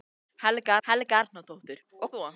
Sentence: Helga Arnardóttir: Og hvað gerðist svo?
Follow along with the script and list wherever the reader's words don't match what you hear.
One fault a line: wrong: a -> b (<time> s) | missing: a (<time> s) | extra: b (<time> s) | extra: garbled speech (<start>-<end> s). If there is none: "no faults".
extra: helga (0.9 s)
missing: hvað gerðist (2.1 s)